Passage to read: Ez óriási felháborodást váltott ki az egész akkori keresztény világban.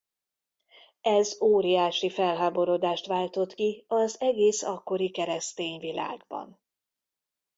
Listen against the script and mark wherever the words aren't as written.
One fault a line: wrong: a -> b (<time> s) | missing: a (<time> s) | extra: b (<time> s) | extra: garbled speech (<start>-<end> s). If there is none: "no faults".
no faults